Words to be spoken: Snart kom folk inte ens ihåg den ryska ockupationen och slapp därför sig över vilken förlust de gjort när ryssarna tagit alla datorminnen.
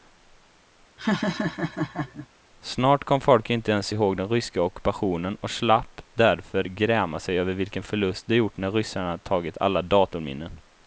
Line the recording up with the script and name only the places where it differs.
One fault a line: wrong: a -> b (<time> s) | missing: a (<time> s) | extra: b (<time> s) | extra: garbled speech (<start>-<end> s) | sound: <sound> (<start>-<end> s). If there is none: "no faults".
sound: laugh (1.0-2.3 s)
extra: gräma (6.6 s)